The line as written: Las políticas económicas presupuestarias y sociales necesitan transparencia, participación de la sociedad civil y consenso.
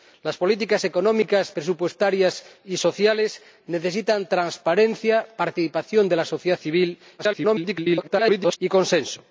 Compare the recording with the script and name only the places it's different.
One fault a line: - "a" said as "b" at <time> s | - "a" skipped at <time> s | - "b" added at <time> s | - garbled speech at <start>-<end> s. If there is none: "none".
- garbled speech at 7.2-8.6 s